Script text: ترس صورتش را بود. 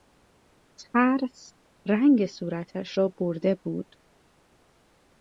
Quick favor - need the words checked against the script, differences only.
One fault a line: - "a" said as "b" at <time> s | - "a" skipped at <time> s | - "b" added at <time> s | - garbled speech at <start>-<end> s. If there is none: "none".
- "رنگ" added at 1.9 s
- "برده" added at 3.2 s